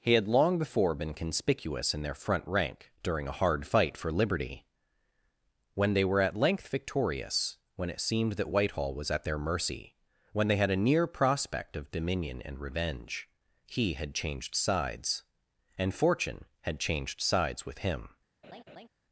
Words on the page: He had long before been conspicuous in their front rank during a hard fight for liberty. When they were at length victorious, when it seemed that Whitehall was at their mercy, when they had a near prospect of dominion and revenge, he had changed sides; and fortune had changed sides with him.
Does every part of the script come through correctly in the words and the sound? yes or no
no